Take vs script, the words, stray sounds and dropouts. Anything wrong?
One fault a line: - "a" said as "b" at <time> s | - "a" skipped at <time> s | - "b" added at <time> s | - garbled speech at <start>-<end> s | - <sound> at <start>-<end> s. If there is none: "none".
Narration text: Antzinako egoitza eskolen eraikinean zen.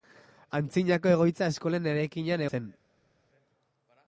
none